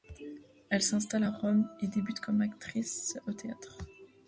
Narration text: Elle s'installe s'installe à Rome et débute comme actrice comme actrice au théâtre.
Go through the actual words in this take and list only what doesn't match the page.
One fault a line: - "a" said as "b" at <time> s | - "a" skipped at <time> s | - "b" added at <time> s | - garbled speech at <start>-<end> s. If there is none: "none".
- "s'installe" skipped at 1.2 s
- "comme actrice" skipped at 3.2 s